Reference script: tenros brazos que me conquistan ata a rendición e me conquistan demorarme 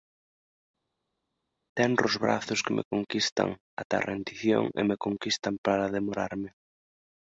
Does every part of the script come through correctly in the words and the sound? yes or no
no